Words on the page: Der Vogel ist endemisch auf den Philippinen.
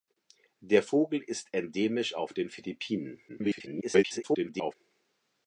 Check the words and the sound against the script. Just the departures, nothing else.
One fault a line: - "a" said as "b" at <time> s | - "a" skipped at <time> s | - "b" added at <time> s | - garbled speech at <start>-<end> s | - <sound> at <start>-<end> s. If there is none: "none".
- garbled speech at 3.3-4.7 s